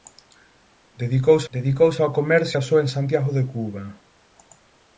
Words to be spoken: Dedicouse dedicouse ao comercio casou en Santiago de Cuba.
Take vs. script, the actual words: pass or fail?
pass